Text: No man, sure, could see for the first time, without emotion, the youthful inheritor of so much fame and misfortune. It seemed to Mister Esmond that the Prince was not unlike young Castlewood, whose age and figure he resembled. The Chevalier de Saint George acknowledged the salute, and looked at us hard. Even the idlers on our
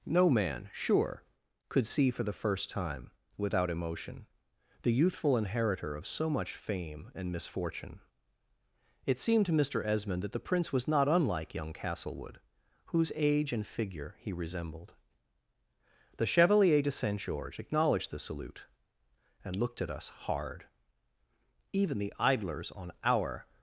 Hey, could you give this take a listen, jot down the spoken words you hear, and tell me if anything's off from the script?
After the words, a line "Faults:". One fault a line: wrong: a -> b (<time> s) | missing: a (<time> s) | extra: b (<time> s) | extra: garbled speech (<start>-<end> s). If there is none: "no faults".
No man, sure, could see for the first time, without emotion, the youthful inheritor of so much fame and misfortune. It seemed to Mister Esmond that the Prince was not unlike young Castlewood, whose age and figure he resembled. The Chevalier de Saint George acknowledged the salute, and looked at us hard. Even the idlers on our
Faults:
no faults